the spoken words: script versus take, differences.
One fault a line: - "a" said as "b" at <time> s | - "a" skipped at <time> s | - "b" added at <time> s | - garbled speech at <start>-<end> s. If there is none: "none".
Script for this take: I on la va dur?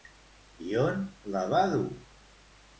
none